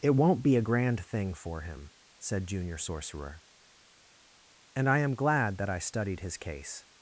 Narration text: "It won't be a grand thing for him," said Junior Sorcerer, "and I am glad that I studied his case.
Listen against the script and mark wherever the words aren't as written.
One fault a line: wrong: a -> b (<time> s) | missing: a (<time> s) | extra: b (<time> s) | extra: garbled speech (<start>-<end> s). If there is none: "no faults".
no faults